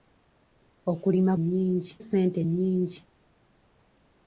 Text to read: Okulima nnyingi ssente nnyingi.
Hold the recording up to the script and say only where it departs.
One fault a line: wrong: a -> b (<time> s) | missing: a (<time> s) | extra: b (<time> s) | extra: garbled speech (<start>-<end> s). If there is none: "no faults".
no faults